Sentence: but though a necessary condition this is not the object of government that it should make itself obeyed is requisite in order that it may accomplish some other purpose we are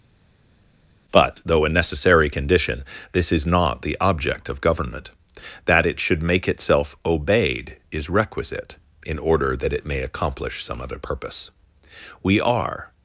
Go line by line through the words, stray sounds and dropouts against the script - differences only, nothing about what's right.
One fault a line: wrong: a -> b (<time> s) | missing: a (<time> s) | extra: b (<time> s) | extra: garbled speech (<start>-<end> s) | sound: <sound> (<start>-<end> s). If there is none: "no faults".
no faults